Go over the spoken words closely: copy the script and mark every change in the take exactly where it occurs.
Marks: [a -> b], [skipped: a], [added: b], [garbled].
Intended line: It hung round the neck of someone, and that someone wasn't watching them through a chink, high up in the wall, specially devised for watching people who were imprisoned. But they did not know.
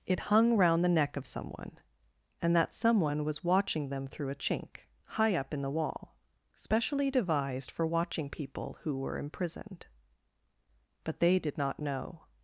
It hung round the neck of someone, and that someone [wasn't -> was] watching them through a chink, high up in the wall, specially devised for watching people who were imprisoned. But they did not know.